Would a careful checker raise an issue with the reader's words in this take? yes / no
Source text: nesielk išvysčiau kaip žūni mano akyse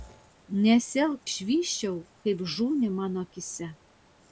no